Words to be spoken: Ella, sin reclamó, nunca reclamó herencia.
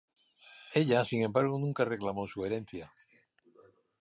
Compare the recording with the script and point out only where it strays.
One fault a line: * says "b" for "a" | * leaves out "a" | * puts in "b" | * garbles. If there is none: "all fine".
* says "embargo" for "reclamó"
* puts in "su"